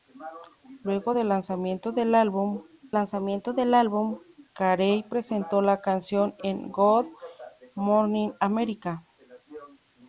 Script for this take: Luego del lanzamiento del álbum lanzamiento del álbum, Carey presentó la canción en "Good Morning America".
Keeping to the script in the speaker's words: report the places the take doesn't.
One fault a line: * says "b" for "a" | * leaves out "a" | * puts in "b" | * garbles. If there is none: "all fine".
all fine